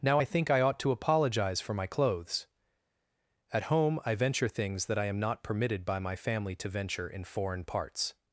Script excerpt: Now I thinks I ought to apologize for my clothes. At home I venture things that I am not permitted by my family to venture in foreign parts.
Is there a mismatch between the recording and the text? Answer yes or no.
yes